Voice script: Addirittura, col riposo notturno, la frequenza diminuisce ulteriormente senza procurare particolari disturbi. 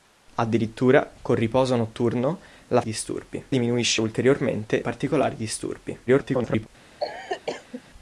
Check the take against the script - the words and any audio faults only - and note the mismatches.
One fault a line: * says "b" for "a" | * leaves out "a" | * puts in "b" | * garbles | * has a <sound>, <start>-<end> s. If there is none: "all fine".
* says "disturbi" for "frequenza"
* leaves out "senza procurare"
* garbles
* has a cough, 7.0-7.8 s